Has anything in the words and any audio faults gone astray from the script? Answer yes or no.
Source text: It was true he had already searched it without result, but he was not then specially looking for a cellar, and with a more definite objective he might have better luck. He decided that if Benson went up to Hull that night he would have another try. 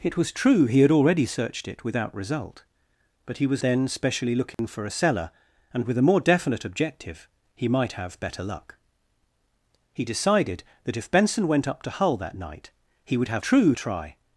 yes